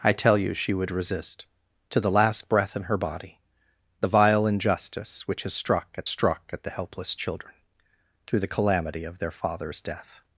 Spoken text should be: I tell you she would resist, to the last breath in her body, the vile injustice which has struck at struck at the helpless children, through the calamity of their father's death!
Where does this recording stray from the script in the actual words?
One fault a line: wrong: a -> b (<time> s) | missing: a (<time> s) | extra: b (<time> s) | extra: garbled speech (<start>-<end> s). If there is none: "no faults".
no faults